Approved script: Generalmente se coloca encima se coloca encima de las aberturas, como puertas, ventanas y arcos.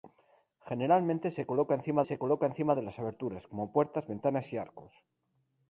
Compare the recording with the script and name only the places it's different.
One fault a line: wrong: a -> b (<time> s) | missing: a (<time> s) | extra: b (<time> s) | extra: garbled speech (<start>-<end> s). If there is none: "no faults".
no faults